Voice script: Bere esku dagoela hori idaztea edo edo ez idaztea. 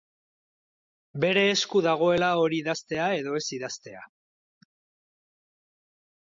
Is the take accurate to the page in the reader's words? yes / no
no